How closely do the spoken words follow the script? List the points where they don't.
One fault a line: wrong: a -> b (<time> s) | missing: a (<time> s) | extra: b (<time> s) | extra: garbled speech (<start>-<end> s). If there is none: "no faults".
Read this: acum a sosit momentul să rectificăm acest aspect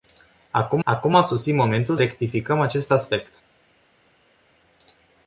extra: acum (0.8 s)
missing: să (2.0 s)